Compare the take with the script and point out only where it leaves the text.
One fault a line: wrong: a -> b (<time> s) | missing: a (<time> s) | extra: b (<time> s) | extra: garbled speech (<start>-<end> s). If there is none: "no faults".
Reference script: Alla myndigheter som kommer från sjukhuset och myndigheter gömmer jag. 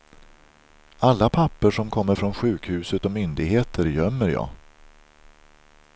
wrong: myndigheter -> papper (1.3 s)